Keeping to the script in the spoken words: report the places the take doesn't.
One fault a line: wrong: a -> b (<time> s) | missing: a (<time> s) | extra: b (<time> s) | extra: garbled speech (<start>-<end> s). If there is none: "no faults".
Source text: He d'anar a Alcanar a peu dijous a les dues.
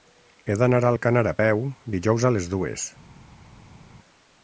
no faults